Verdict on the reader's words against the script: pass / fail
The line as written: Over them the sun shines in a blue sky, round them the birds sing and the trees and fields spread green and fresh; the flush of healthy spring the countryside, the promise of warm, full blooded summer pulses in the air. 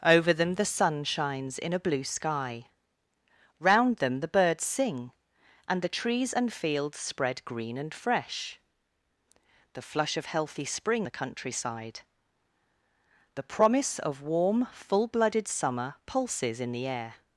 pass